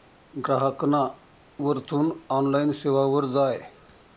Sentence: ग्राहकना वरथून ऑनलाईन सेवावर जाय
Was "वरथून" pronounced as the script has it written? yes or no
yes